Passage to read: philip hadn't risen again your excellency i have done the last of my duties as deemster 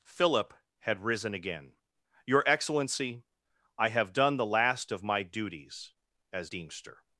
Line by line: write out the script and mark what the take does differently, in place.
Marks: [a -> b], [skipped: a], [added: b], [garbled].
philip [hadn't -> had] risen again your excellency i have done the last of my duties as deemster